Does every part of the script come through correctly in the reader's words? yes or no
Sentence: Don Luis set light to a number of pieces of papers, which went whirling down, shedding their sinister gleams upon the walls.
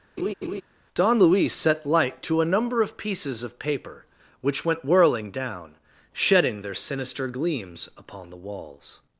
no